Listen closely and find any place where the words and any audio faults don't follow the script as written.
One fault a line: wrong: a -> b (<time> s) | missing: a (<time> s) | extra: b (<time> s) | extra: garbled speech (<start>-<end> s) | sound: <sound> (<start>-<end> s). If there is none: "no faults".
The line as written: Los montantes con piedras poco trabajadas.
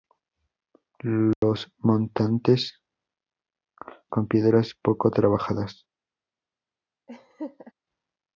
sound: dropout (1.3-1.4 s)
sound: laugh (7.1-7.7 s)